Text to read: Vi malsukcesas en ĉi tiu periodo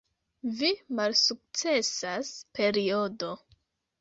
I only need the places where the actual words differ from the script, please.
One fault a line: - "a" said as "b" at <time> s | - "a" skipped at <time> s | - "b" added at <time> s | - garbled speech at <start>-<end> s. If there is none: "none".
- "en ĉi tiu" skipped at 2.3 s